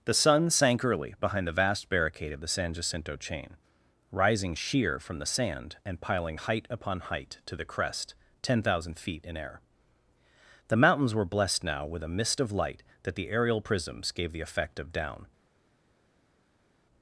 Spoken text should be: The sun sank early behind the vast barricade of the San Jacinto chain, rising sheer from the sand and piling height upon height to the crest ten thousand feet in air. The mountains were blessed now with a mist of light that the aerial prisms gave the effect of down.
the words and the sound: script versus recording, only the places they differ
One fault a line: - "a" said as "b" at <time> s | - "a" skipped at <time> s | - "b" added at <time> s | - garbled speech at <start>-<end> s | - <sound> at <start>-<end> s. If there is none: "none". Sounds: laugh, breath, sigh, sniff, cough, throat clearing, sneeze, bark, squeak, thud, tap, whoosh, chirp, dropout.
none